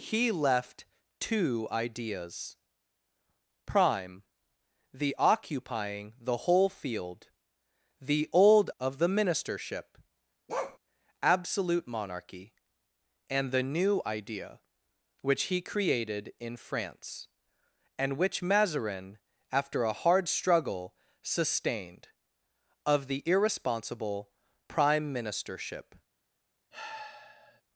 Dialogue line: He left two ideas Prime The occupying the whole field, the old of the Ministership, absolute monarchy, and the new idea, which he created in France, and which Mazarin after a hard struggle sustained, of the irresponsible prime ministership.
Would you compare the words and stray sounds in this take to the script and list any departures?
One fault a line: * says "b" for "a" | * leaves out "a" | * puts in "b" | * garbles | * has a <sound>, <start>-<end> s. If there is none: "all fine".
* has a bark, 10.5-10.8 s
* has a sigh, 26.7-27.6 s